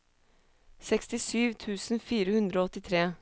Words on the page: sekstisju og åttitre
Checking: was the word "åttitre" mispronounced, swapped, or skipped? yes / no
no